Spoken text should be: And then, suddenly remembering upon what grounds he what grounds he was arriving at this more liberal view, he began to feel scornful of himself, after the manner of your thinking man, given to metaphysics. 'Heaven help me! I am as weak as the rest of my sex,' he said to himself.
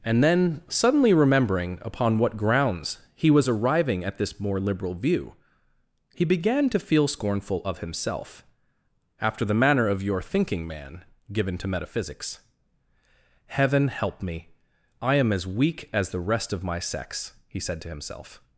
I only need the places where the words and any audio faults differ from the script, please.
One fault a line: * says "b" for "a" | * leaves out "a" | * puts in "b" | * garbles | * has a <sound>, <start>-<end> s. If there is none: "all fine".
* leaves out "what grounds he"